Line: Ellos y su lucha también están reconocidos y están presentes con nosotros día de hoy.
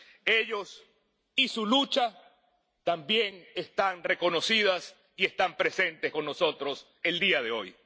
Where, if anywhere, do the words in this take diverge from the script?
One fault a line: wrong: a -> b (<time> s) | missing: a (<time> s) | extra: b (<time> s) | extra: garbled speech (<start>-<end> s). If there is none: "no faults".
extra: el (7.0 s)